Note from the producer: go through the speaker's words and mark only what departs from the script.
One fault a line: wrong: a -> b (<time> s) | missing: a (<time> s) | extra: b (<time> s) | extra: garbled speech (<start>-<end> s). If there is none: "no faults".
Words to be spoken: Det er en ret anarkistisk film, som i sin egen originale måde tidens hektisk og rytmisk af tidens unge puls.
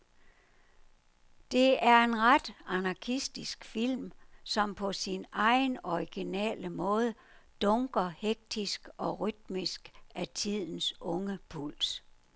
wrong: i -> på (4.8 s)
wrong: tidens -> dunker (7.6 s)